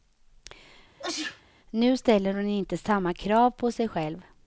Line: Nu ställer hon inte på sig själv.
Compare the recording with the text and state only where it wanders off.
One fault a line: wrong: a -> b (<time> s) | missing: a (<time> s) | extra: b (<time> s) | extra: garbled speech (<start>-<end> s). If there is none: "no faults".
extra: samma krav (2.8 s)